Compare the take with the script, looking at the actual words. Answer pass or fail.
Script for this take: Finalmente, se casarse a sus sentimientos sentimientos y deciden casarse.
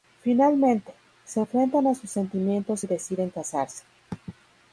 fail